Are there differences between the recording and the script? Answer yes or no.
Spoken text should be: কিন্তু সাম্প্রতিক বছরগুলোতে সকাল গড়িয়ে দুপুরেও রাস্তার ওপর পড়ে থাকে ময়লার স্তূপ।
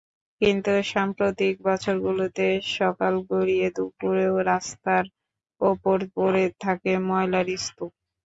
no